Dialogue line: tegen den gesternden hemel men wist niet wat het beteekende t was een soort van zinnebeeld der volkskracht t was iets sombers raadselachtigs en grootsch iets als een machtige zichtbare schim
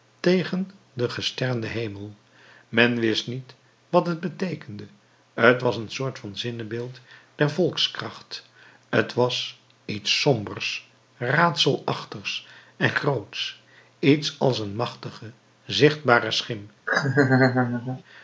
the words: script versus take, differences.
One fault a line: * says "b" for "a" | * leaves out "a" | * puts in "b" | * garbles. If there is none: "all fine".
all fine